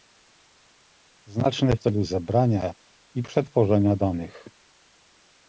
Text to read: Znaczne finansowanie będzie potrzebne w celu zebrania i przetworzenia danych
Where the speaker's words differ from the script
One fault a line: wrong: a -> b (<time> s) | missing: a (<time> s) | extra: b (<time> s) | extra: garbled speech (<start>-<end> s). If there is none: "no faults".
missing: finansowanie będzie potrzebne (1.8 s)